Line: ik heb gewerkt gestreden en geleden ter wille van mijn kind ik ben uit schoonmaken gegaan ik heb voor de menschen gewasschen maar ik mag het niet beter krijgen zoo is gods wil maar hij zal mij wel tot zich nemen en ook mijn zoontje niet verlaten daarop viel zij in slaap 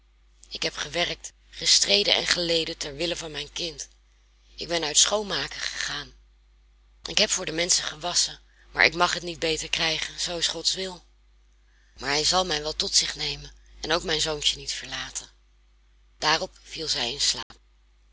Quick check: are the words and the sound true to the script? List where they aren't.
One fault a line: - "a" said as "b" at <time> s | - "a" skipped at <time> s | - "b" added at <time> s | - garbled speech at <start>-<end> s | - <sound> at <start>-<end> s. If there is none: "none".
- dropout at 17.4-17.5 s